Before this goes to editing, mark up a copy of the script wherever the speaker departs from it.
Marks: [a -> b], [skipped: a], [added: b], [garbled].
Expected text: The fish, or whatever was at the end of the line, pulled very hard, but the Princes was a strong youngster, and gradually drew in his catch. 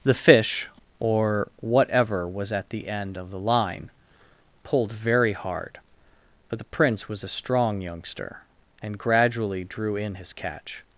The fish, or whatever was at the end of the line, pulled very hard, but the [Princes -> Prince] was a strong youngster, and gradually drew in his catch.